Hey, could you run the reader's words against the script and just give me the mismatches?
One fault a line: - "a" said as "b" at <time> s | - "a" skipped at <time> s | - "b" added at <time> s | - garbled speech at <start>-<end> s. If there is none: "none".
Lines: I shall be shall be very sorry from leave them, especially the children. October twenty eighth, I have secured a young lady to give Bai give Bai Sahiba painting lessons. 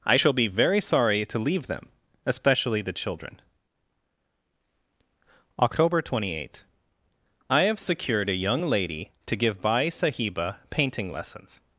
- "shall be" skipped at 0.5 s
- "from" said as "to" at 1.2 s
- "give Bai" skipped at 9.9 s